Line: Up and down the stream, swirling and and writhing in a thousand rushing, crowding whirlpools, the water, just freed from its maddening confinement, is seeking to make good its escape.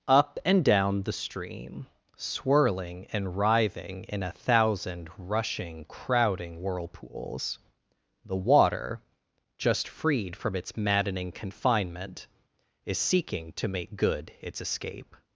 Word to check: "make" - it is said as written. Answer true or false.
true